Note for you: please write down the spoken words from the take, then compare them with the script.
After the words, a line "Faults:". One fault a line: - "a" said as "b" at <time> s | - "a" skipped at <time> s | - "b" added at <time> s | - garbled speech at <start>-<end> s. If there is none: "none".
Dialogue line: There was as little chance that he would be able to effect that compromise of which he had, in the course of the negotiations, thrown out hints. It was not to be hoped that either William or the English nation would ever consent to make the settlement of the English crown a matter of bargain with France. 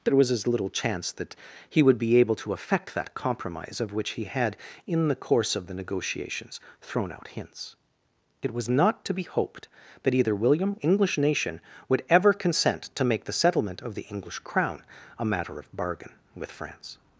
There was as little chance that he would be able to effect that compromise of which he had, in the course of the negotiations, thrown out hints. It was not to be hoped that either William English nation would ever consent to make the settlement of the English crown a matter of bargain with France.
Faults:
- "or the" skipped at 10.8 s